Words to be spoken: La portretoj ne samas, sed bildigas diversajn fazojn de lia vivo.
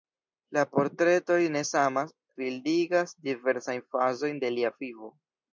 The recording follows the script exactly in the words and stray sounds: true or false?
false